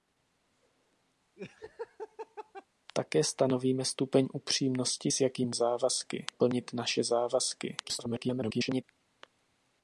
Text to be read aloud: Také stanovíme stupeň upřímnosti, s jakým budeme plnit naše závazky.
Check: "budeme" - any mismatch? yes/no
yes